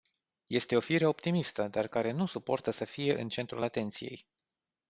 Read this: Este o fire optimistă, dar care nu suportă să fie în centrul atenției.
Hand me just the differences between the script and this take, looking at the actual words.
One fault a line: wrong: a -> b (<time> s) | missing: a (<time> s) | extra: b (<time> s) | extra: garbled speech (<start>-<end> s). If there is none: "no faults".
no faults